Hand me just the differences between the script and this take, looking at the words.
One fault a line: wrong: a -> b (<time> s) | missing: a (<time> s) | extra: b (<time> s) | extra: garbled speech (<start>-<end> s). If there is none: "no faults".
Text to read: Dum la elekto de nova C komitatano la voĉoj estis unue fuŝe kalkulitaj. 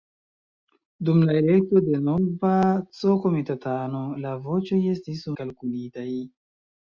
missing: unue fuŝe (5.2 s)